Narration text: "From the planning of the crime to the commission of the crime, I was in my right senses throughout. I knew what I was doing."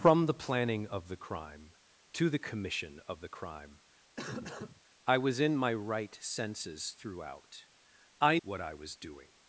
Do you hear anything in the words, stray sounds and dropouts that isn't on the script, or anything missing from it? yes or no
yes